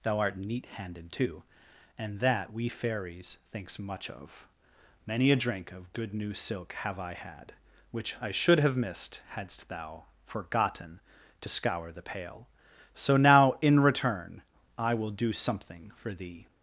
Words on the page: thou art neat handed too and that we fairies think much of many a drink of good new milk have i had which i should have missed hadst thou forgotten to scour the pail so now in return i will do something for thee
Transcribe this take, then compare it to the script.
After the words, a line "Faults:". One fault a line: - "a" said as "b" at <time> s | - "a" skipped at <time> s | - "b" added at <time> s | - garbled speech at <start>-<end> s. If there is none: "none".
thou art neat handed too and that we fairies thinks much of many a drink of good new silk have i had which i should have missed hadst thou forgotten to scour the pail so now in return i will do something for thee
Faults:
- "think" said as "thinks" at 3.5 s
- "milk" said as "silk" at 6.3 s